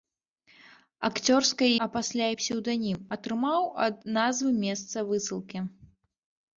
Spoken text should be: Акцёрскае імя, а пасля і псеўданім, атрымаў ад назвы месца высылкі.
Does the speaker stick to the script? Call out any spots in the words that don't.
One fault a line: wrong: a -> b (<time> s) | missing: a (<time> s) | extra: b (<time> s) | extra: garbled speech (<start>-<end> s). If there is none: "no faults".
missing: імя (1.7 s)